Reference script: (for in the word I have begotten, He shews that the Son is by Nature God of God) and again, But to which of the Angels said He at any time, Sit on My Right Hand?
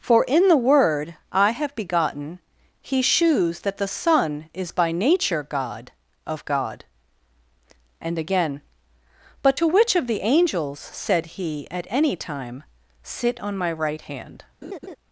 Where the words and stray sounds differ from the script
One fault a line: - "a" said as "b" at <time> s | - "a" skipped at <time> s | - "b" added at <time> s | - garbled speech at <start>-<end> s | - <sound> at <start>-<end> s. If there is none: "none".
- laugh at 14.6-15.0 s